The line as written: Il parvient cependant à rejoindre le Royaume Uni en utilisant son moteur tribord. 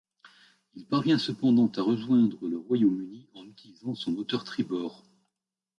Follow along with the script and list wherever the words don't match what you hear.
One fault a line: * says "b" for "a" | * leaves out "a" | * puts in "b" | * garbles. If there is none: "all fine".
all fine